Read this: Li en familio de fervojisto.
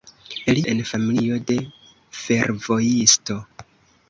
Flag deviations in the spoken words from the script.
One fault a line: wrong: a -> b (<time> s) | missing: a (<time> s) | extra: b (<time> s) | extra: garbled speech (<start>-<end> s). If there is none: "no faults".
no faults